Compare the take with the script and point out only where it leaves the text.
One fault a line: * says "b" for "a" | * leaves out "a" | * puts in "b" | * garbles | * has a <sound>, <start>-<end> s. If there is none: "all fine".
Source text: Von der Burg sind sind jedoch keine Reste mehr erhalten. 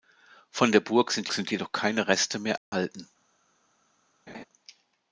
* has a dropout, 2.6-2.7 s
* has a laugh, 4.3-4.4 s